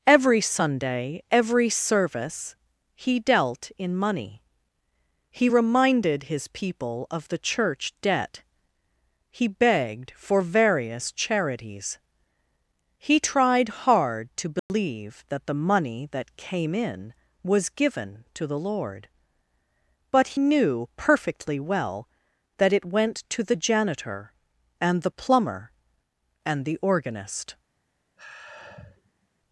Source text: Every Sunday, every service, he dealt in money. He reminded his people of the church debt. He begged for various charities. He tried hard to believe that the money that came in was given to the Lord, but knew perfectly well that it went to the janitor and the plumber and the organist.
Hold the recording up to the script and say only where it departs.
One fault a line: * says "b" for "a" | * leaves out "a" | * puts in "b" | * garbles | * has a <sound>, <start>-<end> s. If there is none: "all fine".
* has a dropout, 14.6-14.7 s
* has a sigh, 28.2-29.3 s